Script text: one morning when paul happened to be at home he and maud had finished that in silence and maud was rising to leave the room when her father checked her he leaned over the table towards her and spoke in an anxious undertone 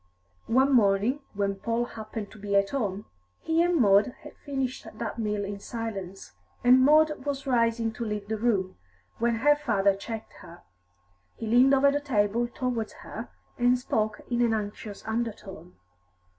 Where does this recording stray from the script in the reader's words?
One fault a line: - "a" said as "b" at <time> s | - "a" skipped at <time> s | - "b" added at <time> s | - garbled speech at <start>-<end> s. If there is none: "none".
- "meal" added at 5.2 s